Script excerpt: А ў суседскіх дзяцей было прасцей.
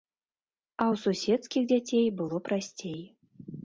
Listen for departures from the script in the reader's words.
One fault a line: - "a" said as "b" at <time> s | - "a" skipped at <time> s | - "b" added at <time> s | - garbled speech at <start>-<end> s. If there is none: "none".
none